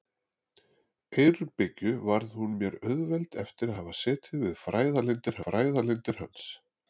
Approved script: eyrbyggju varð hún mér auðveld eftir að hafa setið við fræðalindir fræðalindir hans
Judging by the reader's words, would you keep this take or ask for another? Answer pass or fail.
pass